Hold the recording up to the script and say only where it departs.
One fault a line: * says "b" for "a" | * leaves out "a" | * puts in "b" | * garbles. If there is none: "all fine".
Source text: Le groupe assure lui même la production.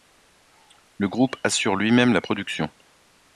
all fine